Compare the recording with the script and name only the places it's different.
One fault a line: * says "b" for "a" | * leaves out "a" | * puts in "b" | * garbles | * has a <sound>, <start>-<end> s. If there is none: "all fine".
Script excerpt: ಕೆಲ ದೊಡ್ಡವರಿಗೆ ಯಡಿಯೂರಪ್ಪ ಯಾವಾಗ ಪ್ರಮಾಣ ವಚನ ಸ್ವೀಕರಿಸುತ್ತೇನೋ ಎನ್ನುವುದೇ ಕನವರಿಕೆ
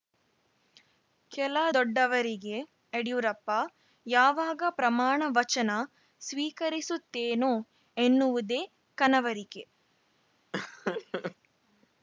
* has a laugh, 10.5-11.4 s